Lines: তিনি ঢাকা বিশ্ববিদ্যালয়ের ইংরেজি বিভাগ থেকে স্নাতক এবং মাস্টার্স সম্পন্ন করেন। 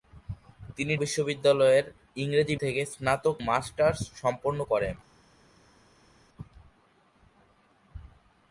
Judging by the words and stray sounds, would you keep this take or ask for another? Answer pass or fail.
fail